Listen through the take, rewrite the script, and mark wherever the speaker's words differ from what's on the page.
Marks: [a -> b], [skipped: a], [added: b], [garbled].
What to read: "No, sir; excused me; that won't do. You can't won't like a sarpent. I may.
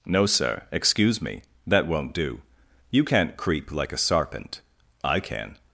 "No, sir; [excused -> excuse] me; that won't do. You can't [won't -> creep] like a sarpent. I [may. -> can]